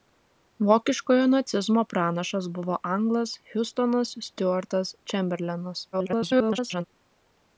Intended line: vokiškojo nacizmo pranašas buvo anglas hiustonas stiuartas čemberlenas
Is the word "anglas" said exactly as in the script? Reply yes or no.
yes